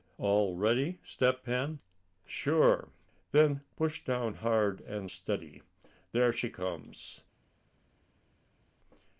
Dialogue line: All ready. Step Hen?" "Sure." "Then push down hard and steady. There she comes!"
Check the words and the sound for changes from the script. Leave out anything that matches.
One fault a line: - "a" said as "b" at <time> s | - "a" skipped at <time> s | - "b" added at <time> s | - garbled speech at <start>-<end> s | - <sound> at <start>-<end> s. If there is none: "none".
none